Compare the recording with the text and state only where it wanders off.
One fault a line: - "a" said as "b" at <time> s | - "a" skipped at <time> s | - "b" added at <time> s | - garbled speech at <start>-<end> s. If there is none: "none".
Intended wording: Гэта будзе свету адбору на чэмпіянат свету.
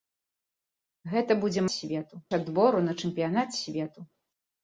none